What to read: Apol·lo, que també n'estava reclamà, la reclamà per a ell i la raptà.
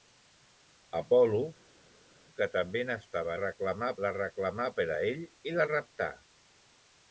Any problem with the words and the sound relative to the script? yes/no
no